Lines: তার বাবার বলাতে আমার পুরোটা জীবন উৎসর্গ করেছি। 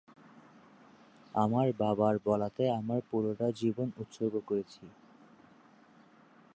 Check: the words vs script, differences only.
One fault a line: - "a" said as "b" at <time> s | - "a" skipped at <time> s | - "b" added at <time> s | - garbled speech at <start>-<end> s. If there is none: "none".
- "তার" said as "আমার" at 1.4 s